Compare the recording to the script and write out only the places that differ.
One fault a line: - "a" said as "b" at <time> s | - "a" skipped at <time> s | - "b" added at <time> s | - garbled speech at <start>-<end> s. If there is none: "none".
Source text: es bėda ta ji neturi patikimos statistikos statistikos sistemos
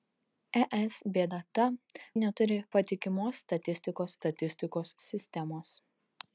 none